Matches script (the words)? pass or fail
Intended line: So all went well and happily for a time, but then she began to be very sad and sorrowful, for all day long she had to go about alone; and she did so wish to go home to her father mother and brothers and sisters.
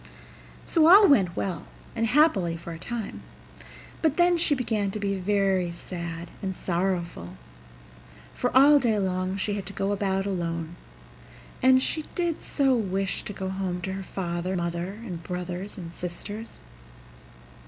pass